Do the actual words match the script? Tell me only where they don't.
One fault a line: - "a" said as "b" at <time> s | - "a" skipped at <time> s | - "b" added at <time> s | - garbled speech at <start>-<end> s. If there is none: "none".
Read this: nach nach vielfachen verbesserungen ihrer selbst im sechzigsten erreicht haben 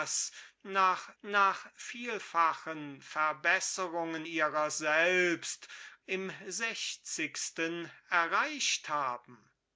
none